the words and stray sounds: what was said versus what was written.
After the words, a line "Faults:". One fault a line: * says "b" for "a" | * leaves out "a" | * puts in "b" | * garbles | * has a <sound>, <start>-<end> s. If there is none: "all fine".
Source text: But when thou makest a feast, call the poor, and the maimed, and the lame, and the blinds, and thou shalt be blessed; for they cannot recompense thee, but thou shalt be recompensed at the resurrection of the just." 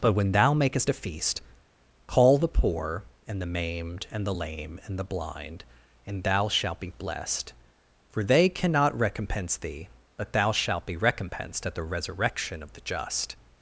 But when thou makest a feast, call the poor, and the maimed, and the lame, and the blind, and thou shalt be blessed; for they cannot recompense thee, but thou shalt be recompensed at the resurrection of the just."
Faults:
* says "blind" for "blinds"